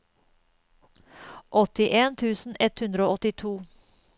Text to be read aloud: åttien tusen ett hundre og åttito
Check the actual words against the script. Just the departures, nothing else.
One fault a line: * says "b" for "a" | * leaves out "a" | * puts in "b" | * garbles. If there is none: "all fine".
all fine